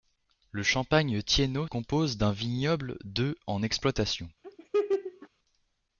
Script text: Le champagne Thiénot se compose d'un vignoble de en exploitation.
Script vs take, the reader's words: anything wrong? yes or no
yes